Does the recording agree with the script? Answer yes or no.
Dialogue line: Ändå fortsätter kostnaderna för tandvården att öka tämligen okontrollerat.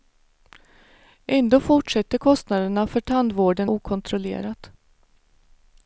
no